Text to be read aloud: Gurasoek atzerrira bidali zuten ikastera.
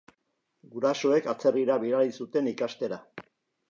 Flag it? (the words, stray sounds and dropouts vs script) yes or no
no